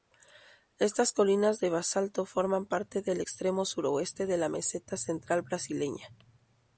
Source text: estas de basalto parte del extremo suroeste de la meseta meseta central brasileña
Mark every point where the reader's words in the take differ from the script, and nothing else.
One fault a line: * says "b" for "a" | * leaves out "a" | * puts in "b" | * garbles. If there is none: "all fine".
* puts in "colinas"
* puts in "forman"
* leaves out "meseta"